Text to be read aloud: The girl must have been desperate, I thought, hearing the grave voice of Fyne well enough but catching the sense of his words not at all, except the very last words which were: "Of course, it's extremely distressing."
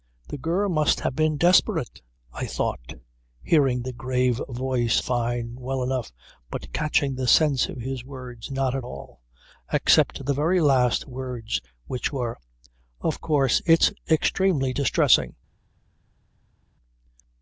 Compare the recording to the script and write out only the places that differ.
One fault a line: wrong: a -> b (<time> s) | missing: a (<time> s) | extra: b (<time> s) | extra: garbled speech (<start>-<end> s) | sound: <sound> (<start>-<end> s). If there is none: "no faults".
missing: of (5.0 s)